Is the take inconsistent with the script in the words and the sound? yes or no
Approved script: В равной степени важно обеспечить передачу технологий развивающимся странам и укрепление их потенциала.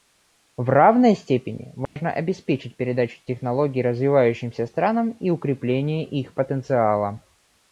yes